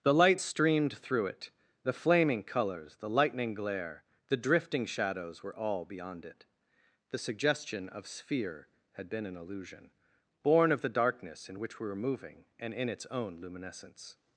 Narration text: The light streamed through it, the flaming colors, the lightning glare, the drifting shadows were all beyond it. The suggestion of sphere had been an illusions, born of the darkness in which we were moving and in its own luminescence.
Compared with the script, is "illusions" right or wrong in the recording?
wrong